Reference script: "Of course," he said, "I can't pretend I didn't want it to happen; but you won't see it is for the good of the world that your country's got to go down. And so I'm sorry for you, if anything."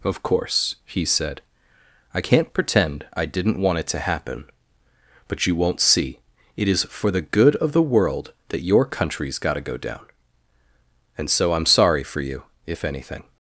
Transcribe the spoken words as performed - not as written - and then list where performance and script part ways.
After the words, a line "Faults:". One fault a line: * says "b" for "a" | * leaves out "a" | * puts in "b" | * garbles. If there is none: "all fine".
"Of course," he said, "I can't pretend I didn't want it to happen; but you won't see it is for the good of the world that your country's got to go down. And so I'm sorry for you, if anything."
Faults:
all fine